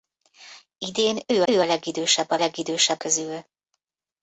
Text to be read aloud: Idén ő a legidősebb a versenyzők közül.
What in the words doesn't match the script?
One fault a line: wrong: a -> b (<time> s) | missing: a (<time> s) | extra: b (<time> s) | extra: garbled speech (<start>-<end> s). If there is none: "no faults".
extra: ő (1.5 s)
wrong: versenyzők -> legidősebb (2.4 s)